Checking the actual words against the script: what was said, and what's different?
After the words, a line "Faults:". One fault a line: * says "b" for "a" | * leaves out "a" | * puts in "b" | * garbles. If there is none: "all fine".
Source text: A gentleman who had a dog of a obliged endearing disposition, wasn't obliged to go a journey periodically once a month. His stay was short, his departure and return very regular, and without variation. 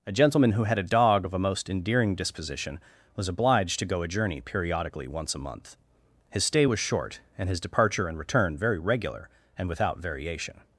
A gentleman who had a dog of a most endearing disposition, was obliged to go a journey periodically once a month. His stay was short, and his departure and return very regular, and without variation.
Faults:
* says "most" for "obliged"
* says "was" for "wasn't"
* puts in "and"